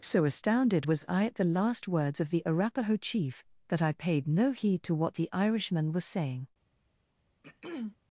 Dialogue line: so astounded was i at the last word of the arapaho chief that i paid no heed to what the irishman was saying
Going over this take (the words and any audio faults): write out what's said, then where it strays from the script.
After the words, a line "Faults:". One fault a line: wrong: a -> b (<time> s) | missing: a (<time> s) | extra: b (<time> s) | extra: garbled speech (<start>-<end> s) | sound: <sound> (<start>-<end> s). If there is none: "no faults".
so astounded was i at the last words of the arapaho chief that i paid no heed to what the irishman was saying
Faults:
wrong: word -> words (1.9 s)
sound: throat clearing (7.4-8.0 s)